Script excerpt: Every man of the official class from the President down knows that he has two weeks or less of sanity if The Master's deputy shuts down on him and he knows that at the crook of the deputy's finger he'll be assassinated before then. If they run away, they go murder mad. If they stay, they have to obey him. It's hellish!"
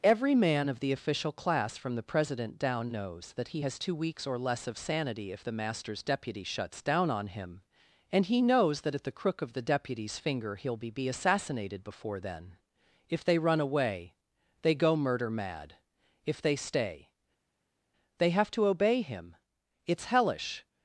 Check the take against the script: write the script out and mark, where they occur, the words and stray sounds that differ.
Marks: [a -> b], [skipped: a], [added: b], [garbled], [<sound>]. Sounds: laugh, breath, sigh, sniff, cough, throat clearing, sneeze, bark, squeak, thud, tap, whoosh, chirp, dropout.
Every man of the official class from the President down knows that he has two weeks or less of sanity if The Master's deputy shuts down on him and he knows that at the crook of the deputy's finger he'll be [added: be] assassinated before then. If they run away, they go murder mad. If they stay, they have to obey him. It's hellish!"